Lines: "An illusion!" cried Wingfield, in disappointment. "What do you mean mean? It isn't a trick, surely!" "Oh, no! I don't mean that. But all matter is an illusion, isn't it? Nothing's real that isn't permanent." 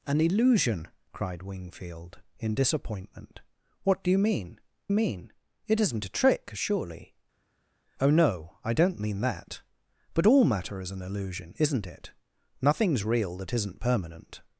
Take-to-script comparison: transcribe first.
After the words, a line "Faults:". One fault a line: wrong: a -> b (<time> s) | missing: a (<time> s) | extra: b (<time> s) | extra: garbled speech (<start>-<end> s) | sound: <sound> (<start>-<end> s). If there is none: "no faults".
"An illusion!" cried Wingfield, in disappointment. "What do you mean mean? It isn't a trick, surely!" "Oh, no! I don't mean that. But all matter is an illusion, isn't it? Nothing's real that isn't permanent."
Faults:
no faults